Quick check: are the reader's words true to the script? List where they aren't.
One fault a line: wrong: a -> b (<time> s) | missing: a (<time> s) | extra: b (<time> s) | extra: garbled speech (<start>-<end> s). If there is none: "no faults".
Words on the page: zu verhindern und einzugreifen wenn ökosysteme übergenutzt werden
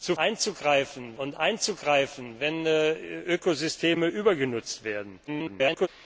wrong: verhindern -> einzugreifen (0.1 s)
extra: garbled speech (5.3-5.9 s)